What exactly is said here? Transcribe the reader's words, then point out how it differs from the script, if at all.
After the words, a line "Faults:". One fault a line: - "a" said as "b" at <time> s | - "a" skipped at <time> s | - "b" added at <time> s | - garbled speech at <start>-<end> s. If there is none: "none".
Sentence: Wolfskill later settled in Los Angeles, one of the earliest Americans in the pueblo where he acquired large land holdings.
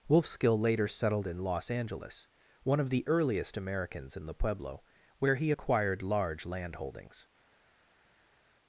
Wolfskill later settled in Los Angeles, one of the earliest Americans in the pueblo where he acquired large land holdings.
Faults:
none